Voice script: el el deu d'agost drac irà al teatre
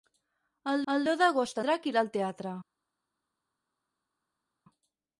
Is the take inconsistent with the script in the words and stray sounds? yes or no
no